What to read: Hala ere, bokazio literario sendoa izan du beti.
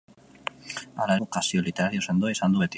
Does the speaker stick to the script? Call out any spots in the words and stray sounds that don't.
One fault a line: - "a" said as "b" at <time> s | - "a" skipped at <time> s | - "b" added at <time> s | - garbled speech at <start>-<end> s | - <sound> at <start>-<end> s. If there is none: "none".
- "ere" skipped at 1.2 s